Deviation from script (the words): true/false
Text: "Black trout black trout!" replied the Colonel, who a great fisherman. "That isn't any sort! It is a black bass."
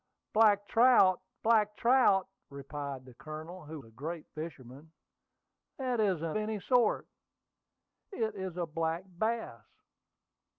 false